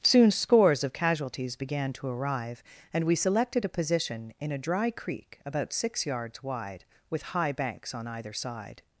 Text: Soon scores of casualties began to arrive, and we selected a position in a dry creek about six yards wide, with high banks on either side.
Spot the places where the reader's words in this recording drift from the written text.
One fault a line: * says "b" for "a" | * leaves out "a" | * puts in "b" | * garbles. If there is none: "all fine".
all fine